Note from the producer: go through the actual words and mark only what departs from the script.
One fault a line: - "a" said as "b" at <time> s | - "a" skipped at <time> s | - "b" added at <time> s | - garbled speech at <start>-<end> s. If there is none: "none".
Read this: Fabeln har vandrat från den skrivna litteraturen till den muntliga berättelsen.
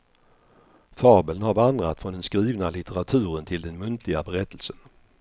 none